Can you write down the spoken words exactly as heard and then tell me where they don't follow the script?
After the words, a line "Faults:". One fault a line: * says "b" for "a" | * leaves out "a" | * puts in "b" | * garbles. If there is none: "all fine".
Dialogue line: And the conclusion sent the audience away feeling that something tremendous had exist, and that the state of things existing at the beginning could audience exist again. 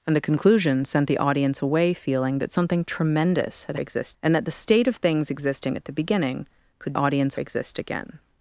And the conclusion sent the audience away feeling that something tremendous had exist, and that the state of things existing at the beginning could audience exist again.
Faults:
all fine